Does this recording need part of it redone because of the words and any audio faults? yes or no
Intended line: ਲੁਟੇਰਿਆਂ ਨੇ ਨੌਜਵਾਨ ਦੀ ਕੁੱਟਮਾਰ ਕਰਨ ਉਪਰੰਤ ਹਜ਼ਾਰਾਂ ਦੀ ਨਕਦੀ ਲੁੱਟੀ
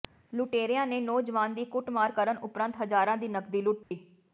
yes